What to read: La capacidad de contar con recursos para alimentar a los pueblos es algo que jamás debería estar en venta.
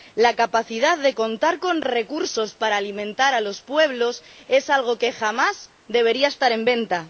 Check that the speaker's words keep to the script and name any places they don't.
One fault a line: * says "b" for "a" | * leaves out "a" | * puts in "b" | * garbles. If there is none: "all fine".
all fine